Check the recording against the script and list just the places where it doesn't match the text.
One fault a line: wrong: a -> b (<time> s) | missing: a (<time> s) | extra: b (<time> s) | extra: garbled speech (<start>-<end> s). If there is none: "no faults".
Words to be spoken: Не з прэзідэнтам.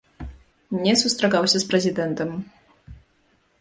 extra: сустракаўся (1.0 s)